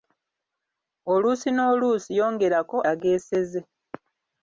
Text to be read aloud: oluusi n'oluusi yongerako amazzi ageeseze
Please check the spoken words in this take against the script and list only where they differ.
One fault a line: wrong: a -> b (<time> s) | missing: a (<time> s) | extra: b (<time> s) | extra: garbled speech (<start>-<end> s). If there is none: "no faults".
missing: amazzi (2.8 s)